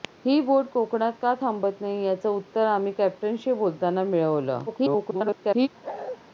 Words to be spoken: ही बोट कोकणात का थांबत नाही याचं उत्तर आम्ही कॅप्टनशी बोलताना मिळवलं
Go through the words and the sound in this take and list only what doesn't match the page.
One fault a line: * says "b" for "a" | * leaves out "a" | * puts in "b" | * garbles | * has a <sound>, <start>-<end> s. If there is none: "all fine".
* garbles
* has a bark, 5.8-6.2 s